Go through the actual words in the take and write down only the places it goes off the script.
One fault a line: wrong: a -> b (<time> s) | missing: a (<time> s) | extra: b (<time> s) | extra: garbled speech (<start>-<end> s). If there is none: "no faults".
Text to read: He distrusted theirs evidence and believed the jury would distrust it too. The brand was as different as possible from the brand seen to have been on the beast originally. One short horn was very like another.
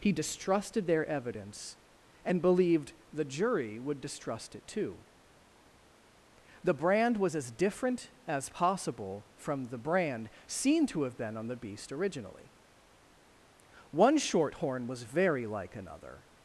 wrong: theirs -> their (0.9 s)